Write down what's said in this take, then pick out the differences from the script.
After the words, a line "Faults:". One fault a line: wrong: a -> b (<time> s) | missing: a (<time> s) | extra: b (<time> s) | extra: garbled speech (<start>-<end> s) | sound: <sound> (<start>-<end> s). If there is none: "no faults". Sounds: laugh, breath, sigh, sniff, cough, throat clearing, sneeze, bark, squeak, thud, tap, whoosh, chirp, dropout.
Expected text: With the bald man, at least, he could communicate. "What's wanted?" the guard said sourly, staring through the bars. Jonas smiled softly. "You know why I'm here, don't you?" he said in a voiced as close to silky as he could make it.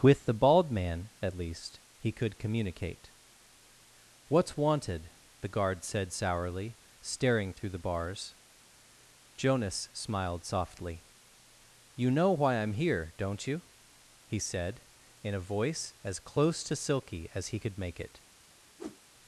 With the bald man, at least, he could communicate. "What's wanted?" the guard said sourly, staring through the bars. Jonas smiled softly. "You know why I'm here, don't you?" he said in a voice as close to silky as he could make it.
Faults:
wrong: voiced -> voice (15.5 s)
sound: whoosh (18.8-19.0 s)